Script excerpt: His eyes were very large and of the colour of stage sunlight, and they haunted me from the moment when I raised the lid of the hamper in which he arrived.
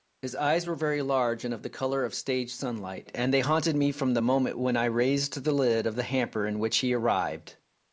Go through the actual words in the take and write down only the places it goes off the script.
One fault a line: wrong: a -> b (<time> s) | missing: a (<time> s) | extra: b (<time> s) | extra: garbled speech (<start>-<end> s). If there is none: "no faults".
no faults